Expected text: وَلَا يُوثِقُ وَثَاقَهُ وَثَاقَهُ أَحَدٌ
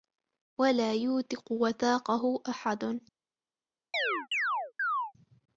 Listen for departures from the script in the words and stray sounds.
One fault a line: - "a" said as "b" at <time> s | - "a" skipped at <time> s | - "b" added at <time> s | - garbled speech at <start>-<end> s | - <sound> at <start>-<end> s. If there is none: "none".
- "وَثَاقَهُ" skipped at 2.4 s
- chirp at 3.9-5.1 s